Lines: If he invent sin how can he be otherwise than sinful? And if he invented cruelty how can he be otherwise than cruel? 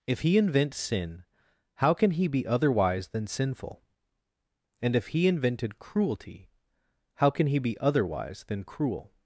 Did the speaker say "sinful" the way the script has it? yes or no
yes